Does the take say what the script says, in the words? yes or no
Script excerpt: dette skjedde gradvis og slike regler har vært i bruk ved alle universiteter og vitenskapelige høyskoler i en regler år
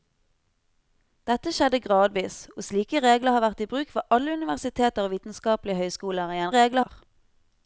yes